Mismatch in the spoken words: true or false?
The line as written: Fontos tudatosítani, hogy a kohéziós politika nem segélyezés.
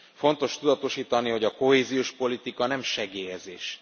false